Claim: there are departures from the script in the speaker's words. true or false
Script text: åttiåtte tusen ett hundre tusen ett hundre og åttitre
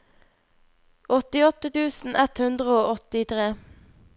true